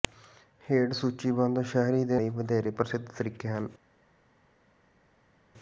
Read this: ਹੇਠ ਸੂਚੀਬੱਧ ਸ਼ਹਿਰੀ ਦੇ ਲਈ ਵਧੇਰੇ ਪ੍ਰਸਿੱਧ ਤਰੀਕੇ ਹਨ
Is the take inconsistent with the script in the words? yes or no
no